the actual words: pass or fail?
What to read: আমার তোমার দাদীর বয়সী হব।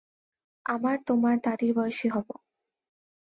pass